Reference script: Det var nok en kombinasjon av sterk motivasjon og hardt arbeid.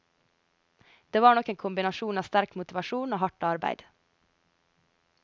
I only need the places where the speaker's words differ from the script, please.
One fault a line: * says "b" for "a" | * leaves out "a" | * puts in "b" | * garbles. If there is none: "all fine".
all fine